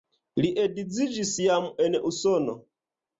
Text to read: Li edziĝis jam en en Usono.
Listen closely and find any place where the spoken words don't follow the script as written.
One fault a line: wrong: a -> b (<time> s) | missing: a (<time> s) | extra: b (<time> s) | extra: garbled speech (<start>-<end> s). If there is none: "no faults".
missing: en (2.0 s)